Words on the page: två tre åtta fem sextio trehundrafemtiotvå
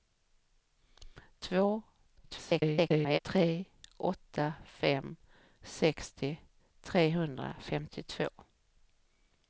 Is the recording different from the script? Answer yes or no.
yes